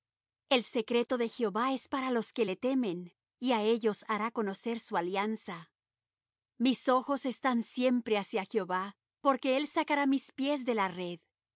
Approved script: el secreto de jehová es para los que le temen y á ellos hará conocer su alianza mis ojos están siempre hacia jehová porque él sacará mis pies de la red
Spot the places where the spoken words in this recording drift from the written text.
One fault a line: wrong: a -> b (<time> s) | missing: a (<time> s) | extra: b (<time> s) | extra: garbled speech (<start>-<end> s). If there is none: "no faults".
no faults